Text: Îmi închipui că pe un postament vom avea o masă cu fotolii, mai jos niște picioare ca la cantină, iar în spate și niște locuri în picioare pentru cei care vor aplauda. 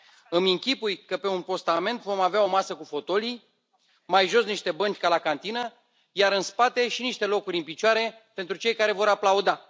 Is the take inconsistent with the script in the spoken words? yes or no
yes